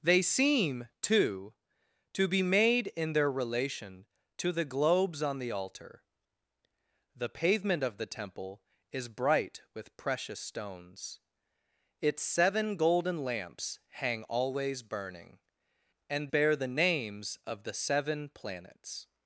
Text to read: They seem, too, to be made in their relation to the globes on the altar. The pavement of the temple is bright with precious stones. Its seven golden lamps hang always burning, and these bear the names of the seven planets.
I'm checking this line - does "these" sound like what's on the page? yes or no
no